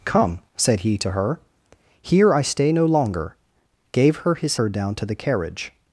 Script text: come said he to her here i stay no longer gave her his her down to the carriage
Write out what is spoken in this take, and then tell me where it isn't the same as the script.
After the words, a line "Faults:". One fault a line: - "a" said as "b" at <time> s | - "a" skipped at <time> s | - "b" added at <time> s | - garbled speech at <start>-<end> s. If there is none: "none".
come said he to her here i stay no longer gave her his her down to the carriage
Faults:
none